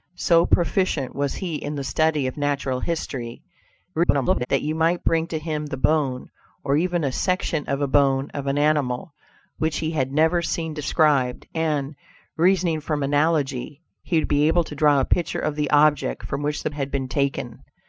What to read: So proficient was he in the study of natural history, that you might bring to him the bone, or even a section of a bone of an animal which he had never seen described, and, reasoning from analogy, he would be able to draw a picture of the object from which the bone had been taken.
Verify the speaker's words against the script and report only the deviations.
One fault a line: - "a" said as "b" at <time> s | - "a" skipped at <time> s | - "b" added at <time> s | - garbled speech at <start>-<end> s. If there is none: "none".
- garbled speech at 3.9-4.5 s
- "bone" skipped at 16.7 s